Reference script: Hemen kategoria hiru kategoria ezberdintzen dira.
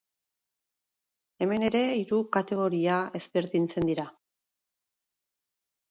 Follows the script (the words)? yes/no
no